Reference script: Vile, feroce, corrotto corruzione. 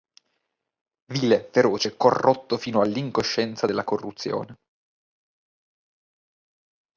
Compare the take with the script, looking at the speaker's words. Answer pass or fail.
fail